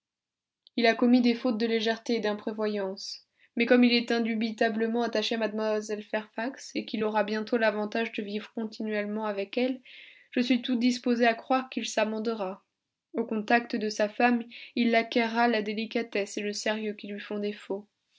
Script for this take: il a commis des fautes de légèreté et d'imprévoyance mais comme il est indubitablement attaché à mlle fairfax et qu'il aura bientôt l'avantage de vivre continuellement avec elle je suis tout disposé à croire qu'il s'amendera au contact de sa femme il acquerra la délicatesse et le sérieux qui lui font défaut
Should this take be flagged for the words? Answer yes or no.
no